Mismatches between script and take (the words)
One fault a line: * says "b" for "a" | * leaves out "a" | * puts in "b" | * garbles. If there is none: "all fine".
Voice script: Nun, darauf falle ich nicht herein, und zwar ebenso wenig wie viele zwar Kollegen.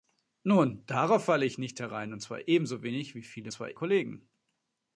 all fine